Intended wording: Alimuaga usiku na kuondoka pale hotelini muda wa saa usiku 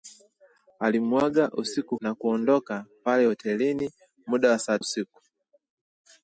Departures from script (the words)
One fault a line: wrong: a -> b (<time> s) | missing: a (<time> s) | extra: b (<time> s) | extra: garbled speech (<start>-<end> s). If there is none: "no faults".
no faults